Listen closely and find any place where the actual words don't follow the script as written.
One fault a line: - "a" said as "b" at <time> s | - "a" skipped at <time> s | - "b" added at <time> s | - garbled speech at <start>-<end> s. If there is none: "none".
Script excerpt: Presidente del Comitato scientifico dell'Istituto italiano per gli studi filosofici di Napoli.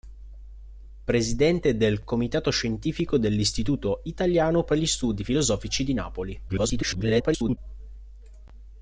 - garbled speech at 6.5-7.6 s